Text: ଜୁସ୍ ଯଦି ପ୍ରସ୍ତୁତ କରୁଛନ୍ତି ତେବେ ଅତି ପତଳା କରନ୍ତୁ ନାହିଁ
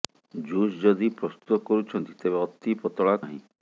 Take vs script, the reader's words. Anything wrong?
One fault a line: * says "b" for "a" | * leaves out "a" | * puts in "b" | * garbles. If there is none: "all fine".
* leaves out "କରନ୍ତୁ"